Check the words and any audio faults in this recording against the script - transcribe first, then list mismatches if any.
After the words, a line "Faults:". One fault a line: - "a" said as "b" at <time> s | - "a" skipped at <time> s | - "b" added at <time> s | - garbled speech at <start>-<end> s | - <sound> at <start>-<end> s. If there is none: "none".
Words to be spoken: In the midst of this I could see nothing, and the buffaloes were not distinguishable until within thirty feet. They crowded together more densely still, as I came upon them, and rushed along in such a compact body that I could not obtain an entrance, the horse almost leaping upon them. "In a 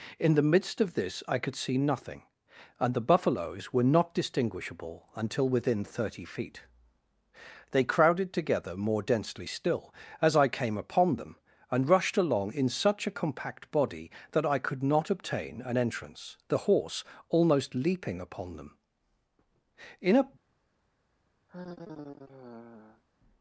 In the midst of this I could see nothing, and the buffaloes were not distinguishable until within thirty feet. They crowded together more densely still, as I came upon them, and rushed along in such a compact body that I could not obtain an entrance, the horse almost leaping upon them. "In a
Faults:
- sigh at 21.5-23.0 s